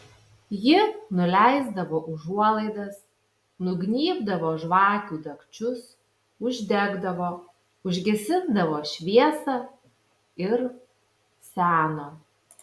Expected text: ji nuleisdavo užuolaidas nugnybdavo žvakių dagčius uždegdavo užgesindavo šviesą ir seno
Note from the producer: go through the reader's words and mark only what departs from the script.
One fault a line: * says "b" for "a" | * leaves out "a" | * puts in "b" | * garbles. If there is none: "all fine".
all fine